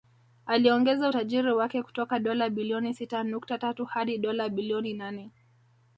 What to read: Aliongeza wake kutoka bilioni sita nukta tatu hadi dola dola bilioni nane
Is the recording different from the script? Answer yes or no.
yes